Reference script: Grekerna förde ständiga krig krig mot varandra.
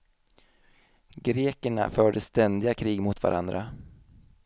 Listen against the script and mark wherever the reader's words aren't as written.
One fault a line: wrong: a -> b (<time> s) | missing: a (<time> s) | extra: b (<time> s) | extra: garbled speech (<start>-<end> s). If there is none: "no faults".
missing: krig (3.0 s)